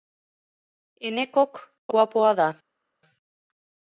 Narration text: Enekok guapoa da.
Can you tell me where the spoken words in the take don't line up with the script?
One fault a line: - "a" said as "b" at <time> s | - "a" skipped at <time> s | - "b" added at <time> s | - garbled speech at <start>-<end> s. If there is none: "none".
none